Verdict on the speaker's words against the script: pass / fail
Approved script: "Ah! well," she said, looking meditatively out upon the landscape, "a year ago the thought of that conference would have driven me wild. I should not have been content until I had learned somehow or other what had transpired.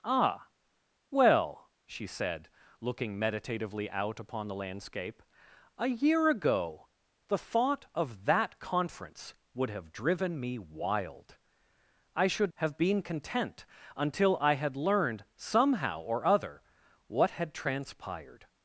fail